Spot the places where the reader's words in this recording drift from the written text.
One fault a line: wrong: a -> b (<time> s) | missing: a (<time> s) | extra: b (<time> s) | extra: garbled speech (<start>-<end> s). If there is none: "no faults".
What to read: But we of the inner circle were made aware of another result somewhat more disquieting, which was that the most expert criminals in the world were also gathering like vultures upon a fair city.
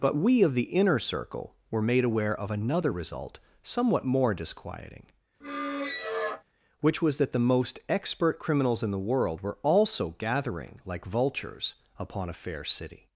no faults